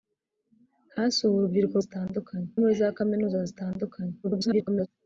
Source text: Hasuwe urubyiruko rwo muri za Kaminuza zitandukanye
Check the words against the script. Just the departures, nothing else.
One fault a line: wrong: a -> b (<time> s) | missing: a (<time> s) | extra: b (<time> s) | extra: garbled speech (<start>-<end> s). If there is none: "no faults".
wrong: rwo -> zitandukanye (1.8 s)
extra: garbled speech (4.2-4.9 s)